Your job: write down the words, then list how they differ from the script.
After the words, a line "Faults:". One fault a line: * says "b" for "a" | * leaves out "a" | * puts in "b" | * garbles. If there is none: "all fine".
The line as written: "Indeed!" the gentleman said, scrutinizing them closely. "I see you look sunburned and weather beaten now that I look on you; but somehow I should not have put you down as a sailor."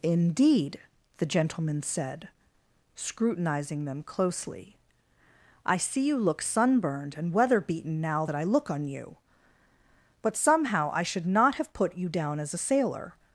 "Indeed!" the gentleman said, scrutinizing them closely. "I see you look sunburned and weather beaten now that I look on you; but somehow I should not have put you down as a sailor."
Faults:
all fine